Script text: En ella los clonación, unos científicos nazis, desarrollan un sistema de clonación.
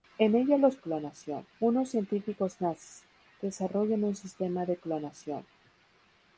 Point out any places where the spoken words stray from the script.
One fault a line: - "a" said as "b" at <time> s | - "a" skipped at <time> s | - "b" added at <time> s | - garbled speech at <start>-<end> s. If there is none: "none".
none